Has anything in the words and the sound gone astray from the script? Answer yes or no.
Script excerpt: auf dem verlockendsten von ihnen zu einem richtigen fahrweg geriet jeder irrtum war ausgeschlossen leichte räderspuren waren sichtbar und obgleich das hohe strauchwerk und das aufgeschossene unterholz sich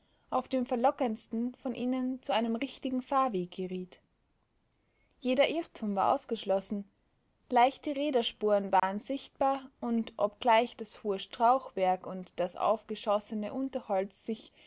yes